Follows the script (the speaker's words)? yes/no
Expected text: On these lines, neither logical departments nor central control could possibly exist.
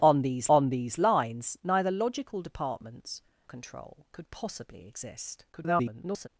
no